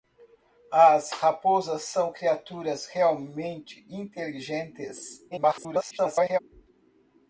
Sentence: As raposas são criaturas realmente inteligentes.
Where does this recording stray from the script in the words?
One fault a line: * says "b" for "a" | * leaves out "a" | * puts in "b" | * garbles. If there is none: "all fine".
* garbles